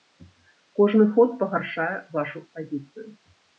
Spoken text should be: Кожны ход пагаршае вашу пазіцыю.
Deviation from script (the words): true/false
false